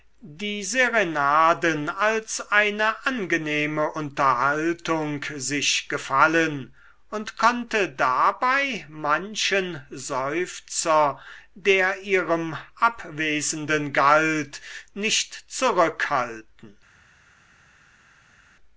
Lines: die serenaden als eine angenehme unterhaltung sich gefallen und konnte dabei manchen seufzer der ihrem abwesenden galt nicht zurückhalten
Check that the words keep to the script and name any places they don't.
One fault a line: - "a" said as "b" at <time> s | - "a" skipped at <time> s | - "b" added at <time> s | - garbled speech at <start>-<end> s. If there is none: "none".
none